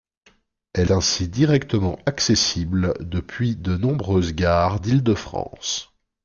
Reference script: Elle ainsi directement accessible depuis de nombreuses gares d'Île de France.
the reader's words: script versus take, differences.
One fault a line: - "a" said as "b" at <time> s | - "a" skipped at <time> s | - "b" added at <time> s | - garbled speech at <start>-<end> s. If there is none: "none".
none